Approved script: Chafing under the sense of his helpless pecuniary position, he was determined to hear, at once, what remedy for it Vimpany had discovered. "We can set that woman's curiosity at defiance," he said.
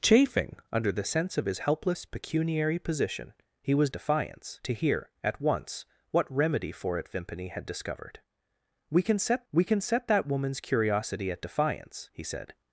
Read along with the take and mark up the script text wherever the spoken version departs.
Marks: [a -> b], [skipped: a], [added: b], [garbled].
Chafing under the sense of his helpless pecuniary position, he was [determined -> defiance] to hear, at once, what remedy for it Vimpany had discovered. "We can set [added: we can set] that woman's curiosity at defiance," he said.